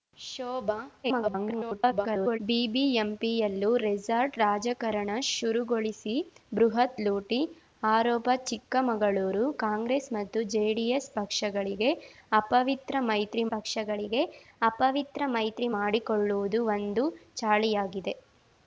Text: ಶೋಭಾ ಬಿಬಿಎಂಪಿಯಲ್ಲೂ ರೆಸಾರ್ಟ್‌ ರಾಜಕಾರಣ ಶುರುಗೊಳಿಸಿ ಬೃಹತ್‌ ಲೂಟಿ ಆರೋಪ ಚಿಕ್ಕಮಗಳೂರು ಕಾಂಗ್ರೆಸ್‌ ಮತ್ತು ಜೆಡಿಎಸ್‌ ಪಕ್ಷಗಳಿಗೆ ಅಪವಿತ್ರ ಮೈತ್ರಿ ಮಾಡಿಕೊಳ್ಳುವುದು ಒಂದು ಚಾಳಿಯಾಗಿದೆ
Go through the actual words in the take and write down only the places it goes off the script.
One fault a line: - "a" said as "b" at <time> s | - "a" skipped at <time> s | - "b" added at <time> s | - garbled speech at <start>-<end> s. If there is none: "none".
- garbled speech at 1.0-2.4 s
- "ಪಕ್ಷಗಳಿಗೆ ಅಪವಿತ್ರ ಮೈತ್ರಿ" added at 13.5 s